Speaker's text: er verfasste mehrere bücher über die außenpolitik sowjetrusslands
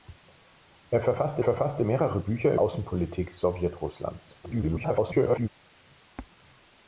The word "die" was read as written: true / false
false